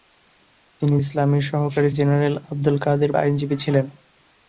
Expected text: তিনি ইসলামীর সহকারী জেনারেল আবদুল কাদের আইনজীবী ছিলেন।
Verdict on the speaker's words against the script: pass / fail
pass